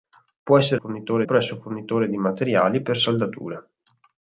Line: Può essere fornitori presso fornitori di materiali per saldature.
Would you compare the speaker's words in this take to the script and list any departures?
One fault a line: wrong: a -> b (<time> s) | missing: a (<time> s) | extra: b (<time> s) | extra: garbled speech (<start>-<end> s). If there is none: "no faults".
no faults